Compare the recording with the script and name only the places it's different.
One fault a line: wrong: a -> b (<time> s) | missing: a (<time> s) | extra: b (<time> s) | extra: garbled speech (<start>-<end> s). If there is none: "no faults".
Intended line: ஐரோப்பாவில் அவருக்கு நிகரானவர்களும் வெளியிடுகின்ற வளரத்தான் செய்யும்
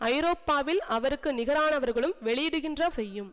missing: வளரத்தான் (2.9 s)